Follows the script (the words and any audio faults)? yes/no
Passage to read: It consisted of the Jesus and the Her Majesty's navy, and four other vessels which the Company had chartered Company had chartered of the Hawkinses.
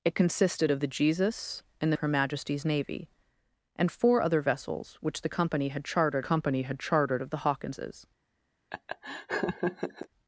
no